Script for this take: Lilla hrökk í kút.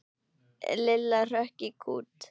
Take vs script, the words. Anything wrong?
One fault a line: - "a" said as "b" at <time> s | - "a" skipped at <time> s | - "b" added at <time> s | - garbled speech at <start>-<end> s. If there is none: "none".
none